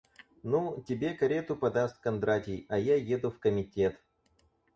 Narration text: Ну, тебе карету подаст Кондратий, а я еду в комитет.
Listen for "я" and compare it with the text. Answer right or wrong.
right